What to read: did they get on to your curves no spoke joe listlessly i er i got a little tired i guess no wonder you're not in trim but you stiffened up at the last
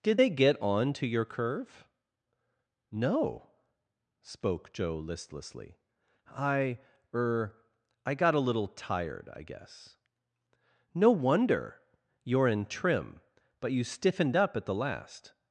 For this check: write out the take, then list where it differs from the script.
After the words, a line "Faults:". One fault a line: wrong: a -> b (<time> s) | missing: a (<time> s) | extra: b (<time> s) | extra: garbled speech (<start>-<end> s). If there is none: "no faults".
did they get on to your curve no spoke joe listlessly i er i got a little tired i guess no wonder you're in trim but you stiffened up at the last
Faults:
wrong: curves -> curve (1.2 s)
missing: not (12.5 s)